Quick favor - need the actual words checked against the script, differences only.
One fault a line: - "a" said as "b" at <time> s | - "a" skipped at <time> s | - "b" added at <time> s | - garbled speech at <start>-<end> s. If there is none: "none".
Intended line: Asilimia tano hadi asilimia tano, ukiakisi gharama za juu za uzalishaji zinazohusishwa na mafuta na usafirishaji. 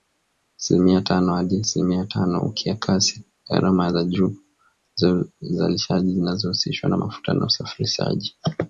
none